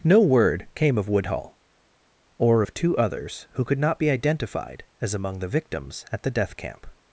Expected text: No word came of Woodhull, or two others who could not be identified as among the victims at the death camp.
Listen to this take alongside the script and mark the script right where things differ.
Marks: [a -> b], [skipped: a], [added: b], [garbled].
No word came of Woodhull, or [added: of] two others who could not be identified as among the victims at the death camp.